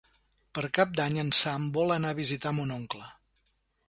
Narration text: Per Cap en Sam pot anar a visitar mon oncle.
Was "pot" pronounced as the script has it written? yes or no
no